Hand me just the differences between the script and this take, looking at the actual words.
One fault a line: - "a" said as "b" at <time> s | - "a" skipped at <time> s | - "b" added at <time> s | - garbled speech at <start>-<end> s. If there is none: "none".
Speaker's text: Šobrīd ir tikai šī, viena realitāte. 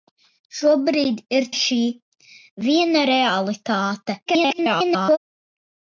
- "tikai" skipped at 1.4 s
- garbled speech at 4.3-5.2 s